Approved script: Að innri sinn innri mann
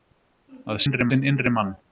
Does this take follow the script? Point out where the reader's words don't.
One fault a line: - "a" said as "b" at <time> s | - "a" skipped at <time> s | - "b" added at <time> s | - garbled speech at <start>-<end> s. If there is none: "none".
none